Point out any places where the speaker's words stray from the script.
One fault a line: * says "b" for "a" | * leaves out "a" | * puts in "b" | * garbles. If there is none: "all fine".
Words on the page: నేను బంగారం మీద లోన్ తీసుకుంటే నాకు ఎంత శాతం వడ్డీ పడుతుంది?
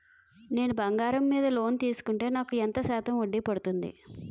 all fine